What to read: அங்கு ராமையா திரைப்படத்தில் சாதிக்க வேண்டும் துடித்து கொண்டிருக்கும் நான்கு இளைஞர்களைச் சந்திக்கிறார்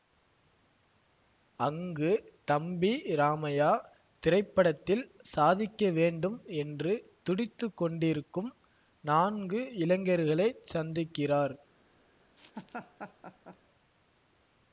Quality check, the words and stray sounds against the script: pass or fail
fail